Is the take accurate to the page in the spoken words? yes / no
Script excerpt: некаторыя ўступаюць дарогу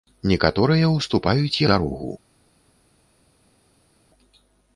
yes